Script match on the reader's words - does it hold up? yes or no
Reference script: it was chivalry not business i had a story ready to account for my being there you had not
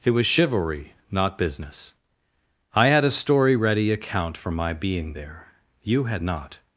no